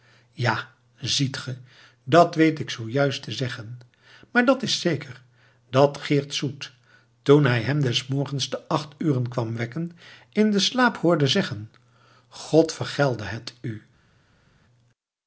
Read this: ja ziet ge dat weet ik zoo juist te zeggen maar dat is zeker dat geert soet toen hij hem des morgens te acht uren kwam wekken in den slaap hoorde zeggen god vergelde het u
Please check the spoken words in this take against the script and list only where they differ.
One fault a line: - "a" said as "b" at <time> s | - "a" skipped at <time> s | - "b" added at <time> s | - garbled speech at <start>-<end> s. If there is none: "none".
none